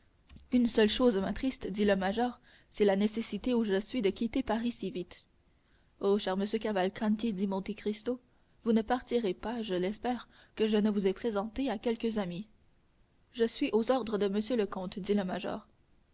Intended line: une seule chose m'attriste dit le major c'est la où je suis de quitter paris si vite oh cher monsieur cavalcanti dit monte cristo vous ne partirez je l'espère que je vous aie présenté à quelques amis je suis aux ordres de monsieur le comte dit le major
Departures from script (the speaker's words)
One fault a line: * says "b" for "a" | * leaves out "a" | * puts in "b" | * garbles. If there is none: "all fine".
* puts in "nécessité"
* puts in "pas"
* puts in "ne"